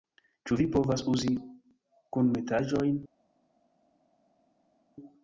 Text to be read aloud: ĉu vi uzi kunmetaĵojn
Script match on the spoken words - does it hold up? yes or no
no